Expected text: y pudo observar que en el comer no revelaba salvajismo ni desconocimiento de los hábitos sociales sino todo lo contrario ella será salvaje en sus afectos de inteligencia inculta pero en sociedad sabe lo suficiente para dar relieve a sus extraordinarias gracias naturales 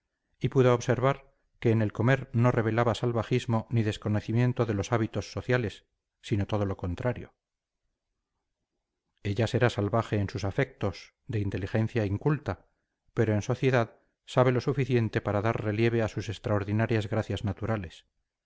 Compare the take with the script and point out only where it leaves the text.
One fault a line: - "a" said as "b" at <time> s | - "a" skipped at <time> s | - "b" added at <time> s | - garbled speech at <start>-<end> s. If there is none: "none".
none